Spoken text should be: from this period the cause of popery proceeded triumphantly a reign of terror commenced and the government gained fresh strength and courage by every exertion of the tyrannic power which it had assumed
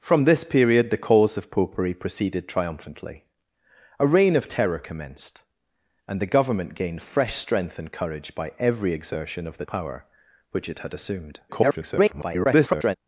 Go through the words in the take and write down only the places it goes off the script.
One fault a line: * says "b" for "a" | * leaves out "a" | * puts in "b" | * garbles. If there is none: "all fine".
* leaves out "tyrannic"
* garbles